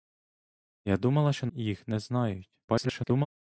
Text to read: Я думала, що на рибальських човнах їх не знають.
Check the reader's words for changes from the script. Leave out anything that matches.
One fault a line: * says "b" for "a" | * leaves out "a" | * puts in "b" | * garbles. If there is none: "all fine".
* leaves out "на рибальських човнах"
* garbles